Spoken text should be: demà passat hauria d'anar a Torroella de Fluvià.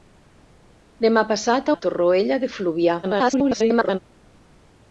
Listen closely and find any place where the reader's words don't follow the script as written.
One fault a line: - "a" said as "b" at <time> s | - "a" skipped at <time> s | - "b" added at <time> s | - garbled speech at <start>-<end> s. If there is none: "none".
- "hauria d'anar" skipped at 1.7 s
- garbled speech at 3.0-4.0 s